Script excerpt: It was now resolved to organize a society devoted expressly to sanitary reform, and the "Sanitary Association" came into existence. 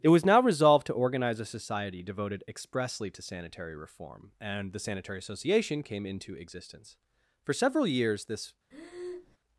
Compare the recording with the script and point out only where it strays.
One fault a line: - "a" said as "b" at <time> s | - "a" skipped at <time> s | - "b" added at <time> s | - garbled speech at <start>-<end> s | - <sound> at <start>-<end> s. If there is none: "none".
- "For several years this" added at 7.4 s
- breath at 8.7-9.4 s